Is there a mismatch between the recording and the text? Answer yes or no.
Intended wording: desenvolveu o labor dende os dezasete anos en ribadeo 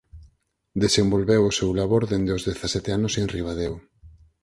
yes